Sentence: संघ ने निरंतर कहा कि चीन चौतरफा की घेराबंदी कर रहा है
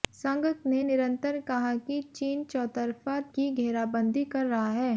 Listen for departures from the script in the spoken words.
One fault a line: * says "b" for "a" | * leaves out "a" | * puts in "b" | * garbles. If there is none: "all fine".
all fine